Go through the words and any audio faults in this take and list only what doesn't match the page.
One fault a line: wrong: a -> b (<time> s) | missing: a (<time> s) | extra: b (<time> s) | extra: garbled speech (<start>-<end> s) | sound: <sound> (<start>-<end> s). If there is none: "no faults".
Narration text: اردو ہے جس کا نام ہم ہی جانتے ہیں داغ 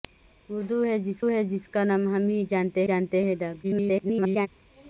extra: ہے جس (1.3 s)
extra: جانتے (2.8 s)
extra: garbled speech (3.6-4.5 s)